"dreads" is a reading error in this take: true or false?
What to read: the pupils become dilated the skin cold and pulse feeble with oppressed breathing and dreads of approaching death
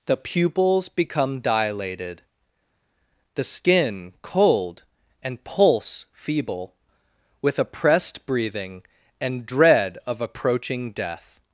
true